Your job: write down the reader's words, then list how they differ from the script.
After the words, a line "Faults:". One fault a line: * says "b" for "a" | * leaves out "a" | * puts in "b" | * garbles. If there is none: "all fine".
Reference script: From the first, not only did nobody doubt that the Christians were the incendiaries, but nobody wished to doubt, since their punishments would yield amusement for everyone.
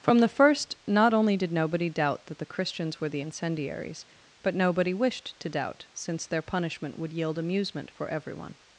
From the first, not only did nobody doubt that the Christians were the incendiaries, but nobody wished to doubt, since their punishment would yield amusement for everyone.
Faults:
* says "punishment" for "punishments"